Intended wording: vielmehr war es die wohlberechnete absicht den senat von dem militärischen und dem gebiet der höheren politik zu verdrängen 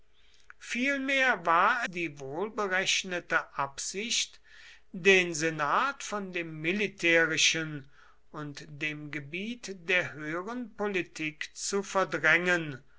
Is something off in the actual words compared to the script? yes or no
yes